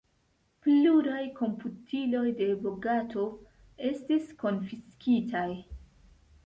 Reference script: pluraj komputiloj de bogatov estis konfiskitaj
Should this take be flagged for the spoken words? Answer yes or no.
no